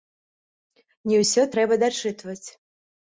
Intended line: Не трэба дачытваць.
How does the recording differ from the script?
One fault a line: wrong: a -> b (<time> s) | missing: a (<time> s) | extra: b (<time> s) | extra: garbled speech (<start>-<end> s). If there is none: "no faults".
extra: ўсё (1.2 s)